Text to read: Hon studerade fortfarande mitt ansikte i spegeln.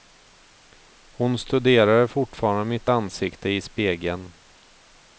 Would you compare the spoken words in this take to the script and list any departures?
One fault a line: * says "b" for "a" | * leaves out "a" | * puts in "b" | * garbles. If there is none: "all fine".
all fine